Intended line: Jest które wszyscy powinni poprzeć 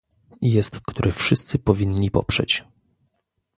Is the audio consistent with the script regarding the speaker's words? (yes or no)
yes